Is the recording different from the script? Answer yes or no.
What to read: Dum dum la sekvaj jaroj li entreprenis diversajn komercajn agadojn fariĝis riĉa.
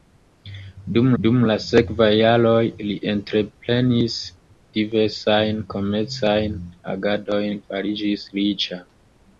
no